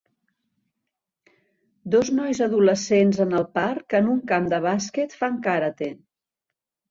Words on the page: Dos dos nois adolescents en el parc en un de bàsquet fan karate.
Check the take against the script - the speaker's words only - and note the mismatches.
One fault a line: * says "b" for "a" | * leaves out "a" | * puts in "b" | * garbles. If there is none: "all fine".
* leaves out "dos"
* puts in "camp"